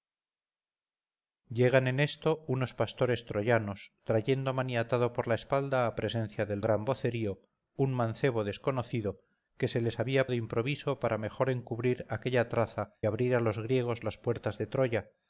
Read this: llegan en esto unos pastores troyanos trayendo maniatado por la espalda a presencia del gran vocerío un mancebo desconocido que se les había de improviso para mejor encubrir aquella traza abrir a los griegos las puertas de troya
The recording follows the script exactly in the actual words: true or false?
true